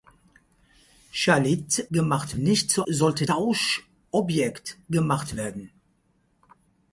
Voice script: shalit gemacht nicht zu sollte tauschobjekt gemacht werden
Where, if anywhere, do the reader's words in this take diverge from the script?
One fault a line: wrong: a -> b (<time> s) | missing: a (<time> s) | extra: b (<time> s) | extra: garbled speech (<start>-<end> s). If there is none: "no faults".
no faults